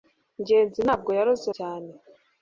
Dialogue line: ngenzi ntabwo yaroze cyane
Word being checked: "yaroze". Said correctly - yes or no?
yes